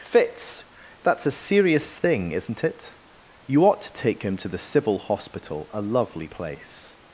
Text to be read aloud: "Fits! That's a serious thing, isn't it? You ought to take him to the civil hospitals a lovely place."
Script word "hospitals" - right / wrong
wrong